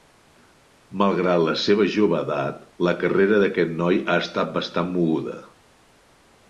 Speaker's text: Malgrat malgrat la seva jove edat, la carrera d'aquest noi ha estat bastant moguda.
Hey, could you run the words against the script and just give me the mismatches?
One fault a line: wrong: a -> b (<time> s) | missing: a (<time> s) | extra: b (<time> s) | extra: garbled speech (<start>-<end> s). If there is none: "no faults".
missing: malgrat (1.4 s)